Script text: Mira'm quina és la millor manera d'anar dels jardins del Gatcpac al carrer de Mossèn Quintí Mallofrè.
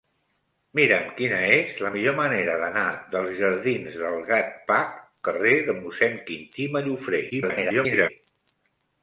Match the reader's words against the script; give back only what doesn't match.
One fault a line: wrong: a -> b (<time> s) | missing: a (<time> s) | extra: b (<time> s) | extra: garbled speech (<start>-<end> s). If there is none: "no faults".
missing: al (5.0 s)
extra: garbled speech (7.3-8.1 s)